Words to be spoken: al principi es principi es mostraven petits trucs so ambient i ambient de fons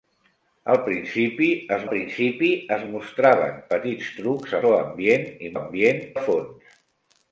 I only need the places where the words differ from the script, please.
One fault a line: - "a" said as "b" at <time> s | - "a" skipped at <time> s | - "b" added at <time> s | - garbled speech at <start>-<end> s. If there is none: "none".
none